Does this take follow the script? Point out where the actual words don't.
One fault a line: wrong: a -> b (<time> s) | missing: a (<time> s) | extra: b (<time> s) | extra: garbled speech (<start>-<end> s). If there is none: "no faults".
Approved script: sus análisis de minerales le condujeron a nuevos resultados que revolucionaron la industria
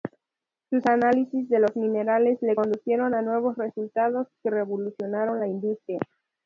extra: los (1.6 s)